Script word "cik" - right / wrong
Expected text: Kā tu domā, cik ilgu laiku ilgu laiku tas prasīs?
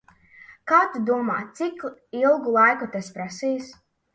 right